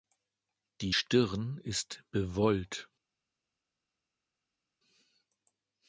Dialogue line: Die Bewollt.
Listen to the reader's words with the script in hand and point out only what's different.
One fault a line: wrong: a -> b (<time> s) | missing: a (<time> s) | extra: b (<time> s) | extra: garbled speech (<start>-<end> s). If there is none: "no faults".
extra: Stirn ist (0.9 s)